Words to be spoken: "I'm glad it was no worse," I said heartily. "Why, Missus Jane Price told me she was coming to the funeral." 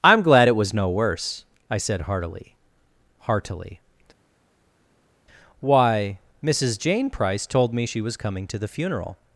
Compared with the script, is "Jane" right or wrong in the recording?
right